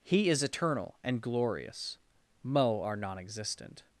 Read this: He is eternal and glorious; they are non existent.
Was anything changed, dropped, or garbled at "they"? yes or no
yes